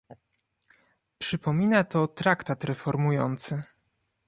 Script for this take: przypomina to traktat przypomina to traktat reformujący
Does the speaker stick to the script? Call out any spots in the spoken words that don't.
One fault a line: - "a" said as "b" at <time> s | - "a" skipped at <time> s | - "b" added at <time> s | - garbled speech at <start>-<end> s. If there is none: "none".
- "przypomina to traktat" skipped at 2.6 s